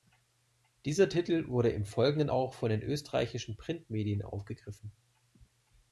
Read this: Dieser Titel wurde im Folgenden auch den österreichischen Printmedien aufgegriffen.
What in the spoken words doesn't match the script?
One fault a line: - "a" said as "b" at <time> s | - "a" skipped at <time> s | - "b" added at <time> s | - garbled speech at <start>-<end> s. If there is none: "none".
- "von" added at 2.5 s